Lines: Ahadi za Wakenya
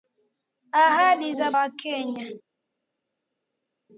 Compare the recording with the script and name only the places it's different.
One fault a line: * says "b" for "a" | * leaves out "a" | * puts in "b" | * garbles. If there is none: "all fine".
all fine